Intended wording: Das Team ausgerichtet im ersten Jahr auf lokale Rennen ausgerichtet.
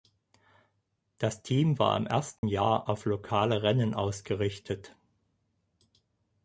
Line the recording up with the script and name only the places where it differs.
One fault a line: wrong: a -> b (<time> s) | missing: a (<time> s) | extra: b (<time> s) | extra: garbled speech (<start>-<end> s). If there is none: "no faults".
wrong: ausgerichtet -> war (1.8 s)